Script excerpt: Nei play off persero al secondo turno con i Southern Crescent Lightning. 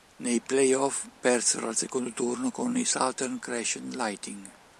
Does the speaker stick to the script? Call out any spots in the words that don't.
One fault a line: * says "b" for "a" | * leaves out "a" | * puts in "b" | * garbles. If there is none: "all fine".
all fine